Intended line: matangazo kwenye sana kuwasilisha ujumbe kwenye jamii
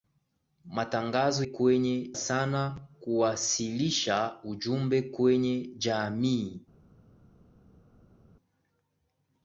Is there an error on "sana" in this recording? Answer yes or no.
no